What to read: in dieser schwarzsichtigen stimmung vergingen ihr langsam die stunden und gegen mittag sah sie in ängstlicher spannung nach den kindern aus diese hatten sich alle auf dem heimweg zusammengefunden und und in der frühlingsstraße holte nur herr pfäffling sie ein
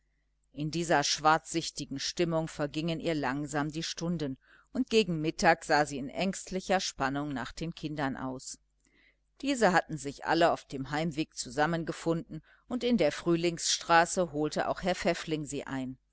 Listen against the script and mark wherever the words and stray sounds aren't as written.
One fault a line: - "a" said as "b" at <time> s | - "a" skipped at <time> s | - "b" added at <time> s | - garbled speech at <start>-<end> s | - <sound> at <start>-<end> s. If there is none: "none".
- "und" skipped at 12.8 s
- "nur" said as "auch" at 14.7 s